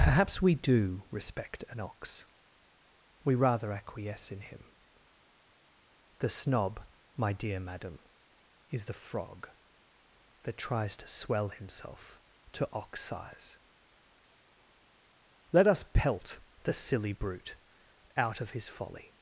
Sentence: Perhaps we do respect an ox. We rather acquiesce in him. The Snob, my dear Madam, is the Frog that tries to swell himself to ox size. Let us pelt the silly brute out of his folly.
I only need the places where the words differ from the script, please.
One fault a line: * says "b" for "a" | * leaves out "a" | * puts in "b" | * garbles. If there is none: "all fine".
all fine